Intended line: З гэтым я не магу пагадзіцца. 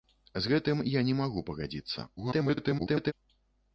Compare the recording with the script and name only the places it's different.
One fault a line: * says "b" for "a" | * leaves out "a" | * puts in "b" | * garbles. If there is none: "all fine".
* garbles